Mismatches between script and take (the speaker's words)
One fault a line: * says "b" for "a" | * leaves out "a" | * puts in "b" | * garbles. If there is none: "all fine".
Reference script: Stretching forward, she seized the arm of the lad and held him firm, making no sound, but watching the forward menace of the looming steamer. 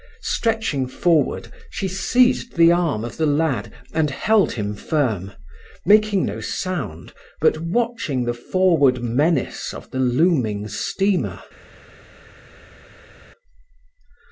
all fine